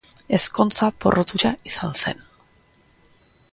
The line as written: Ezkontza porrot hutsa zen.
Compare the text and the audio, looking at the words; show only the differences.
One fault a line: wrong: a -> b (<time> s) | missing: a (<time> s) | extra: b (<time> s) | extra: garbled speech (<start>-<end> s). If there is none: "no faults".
extra: izan (1.7 s)